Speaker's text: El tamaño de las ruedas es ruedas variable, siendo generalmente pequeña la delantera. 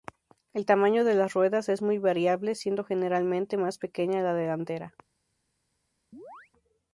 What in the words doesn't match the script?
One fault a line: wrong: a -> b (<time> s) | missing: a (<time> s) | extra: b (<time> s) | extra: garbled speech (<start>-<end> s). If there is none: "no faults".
wrong: ruedas -> muy (1.8 s)
extra: más (3.6 s)